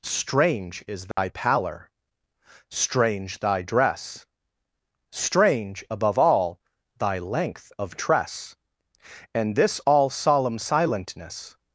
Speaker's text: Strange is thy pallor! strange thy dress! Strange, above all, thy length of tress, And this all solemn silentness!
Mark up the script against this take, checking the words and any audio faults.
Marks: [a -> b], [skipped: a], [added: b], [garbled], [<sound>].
Strange is thy [dropout] pallor! strange thy dress! Strange, above all, thy length of tress, And this all solemn silentness!